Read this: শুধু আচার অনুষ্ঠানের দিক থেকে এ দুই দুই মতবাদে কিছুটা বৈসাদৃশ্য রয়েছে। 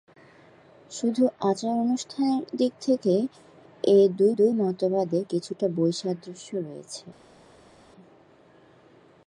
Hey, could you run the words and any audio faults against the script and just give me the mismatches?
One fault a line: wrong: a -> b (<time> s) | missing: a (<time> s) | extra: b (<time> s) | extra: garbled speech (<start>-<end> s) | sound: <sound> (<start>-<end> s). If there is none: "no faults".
no faults